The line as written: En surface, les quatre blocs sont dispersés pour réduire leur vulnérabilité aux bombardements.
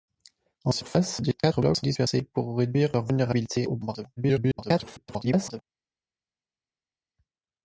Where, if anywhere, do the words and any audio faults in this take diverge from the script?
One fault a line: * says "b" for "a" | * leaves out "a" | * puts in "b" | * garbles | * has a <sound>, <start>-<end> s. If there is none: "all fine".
* garbles